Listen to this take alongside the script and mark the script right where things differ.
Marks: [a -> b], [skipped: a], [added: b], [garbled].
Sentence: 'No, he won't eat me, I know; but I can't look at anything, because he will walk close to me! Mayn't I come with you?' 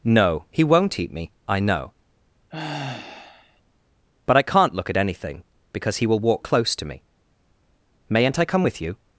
'No, he won't eat me, I know; but I can't look at anything, because he will walk close to me! Mayn't I come with you?'